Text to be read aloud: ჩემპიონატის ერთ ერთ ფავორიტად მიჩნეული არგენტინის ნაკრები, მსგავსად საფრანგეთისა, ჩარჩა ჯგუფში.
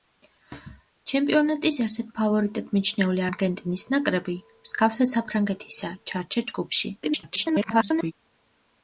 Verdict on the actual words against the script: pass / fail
fail